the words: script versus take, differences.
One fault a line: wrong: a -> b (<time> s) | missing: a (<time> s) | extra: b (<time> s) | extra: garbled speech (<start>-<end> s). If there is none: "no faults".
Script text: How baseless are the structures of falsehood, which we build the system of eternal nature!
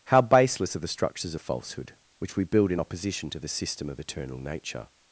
extra: in opposition to (2.7 s)